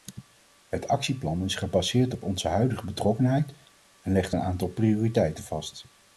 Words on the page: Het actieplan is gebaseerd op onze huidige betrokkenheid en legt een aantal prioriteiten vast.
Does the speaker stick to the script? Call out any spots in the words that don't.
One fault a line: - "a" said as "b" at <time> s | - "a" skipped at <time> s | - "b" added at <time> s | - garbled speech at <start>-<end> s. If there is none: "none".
none